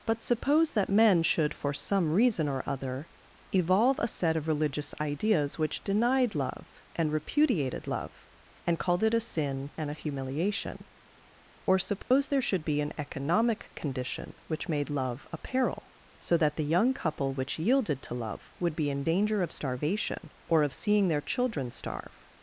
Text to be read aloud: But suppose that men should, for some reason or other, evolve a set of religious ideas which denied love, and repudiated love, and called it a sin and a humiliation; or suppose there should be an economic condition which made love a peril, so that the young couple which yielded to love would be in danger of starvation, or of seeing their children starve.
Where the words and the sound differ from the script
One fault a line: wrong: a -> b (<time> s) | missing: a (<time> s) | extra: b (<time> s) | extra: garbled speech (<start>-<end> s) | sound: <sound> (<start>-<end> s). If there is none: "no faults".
sound: dropout (12.0-12.1 s)